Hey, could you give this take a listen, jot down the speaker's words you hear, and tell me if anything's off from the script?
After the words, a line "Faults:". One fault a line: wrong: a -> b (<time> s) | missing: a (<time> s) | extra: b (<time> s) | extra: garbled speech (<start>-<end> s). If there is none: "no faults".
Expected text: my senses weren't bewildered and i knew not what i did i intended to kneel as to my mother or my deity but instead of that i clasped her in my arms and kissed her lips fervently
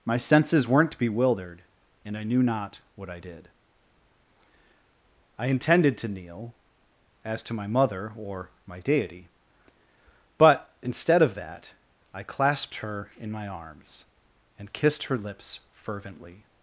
my senses weren't bewildered and i knew not what i did i intended to kneel as to my mother or my deity but instead of that i clasped her in my arms and kissed her lips fervently
Faults:
no faults